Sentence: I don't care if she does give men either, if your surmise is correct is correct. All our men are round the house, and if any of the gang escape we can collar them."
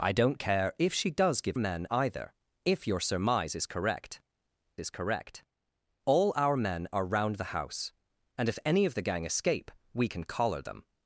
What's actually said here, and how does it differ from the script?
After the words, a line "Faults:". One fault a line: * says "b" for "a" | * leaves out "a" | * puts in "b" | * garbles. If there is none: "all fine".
I don't care if she does give men either, if your surmise is correct is correct. All our men are round the house, and if any of the gang escape we can collar them."
Faults:
all fine